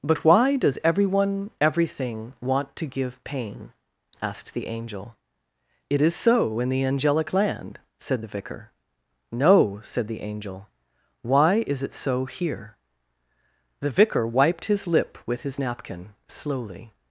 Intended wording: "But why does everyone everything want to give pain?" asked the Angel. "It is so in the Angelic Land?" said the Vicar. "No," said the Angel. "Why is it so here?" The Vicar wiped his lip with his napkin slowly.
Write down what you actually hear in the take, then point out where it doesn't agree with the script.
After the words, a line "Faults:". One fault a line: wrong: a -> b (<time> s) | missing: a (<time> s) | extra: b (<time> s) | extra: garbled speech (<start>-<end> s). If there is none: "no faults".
"But why does everyone everything want to give pain?" asked the Angel. "It is so in the Angelic Land?" said the Vicar. "No," said the Angel. "Why is it so here?" The Vicar wiped his lip with his napkin slowly.
Faults:
no faults